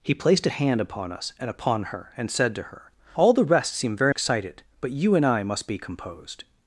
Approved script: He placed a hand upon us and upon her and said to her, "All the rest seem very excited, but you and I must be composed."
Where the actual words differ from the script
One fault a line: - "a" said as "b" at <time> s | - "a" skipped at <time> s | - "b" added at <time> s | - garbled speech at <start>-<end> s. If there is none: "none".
none